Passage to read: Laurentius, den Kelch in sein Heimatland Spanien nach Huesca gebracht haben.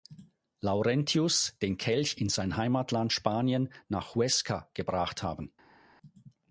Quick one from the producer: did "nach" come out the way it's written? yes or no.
yes